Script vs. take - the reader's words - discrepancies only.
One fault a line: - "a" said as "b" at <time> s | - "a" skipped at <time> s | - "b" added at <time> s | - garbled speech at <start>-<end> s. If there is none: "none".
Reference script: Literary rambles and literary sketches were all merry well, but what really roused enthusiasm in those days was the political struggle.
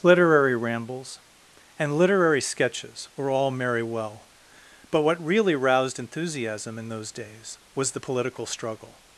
none